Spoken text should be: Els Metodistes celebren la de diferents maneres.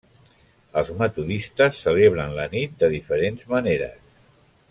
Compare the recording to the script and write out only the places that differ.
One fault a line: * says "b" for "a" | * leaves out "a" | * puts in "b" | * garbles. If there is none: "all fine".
* puts in "nit"